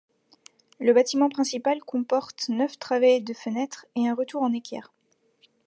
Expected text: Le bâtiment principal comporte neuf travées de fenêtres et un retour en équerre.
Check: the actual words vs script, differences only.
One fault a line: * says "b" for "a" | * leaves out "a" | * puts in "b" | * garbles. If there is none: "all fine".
all fine